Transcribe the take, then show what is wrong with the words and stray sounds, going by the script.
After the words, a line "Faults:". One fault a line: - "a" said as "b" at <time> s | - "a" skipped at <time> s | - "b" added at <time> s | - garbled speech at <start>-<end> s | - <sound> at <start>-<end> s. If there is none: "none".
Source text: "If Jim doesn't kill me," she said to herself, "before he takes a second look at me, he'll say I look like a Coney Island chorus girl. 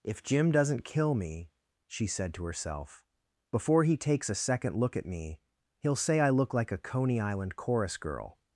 "If Jim doesn't kill me," she said to herself, "before he takes a second look at me, he'll say I look like a Coney Island chorus girl.
Faults:
none